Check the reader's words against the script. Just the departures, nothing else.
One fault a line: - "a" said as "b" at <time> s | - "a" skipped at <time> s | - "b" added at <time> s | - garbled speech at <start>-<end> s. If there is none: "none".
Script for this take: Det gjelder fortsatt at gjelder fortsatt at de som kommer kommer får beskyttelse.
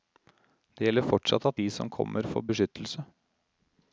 - "gjelder fortsatt at" skipped at 1.6 s
- "kommer" skipped at 2.3 s